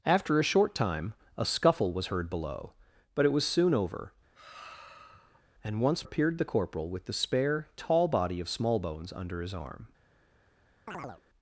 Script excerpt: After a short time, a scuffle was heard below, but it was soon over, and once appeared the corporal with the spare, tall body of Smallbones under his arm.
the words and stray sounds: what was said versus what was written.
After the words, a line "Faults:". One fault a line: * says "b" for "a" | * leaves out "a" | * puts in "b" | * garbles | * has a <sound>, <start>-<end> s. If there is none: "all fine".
After a short time, a scuffle was heard below, but it was soon over, and once appeared the corporal with the spare, tall body of Smallbones under his arm.
Faults:
* has a sigh, 4.3-5.4 s
* has a chirp, 10.9-11.2 s